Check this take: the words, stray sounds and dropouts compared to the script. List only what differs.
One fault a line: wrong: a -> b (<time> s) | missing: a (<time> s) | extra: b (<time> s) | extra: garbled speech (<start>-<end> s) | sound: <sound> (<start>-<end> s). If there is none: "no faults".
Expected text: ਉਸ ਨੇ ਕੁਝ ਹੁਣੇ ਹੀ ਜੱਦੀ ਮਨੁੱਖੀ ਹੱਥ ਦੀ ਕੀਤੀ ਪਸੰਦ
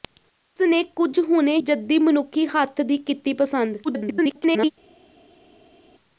missing: ਹੀ (1.6 s)
extra: garbled speech (3.8-4.7 s)